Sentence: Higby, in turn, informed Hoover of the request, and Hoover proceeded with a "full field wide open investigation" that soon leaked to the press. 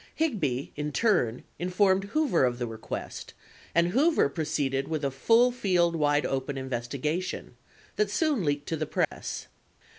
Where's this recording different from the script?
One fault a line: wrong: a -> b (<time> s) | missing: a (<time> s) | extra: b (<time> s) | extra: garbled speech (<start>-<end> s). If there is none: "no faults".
no faults